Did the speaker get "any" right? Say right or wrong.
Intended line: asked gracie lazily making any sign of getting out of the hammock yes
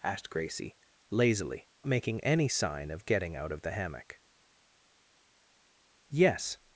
right